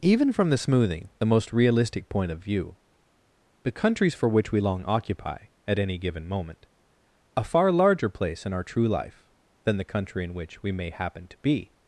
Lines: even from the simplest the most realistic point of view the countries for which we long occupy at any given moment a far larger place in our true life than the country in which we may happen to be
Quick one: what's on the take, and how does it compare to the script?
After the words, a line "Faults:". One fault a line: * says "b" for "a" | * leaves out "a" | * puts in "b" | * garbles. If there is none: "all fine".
even from the smoothing the most realistic point of view the countries for which we long occupy at any given moment a far larger place in our true life than the country in which we may happen to be
Faults:
* says "smoothing" for "simplest"